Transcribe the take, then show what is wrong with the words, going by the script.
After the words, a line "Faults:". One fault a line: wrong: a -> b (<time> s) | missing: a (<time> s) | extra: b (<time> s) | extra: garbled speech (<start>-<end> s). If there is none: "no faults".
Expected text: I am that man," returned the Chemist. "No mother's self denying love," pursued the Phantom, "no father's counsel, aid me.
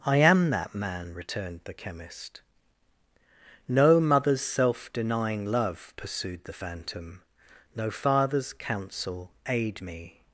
I am that man," returned the Chemist. "No mother's self denying love," pursued the Phantom, "no father's counsel, aid me.
Faults:
no faults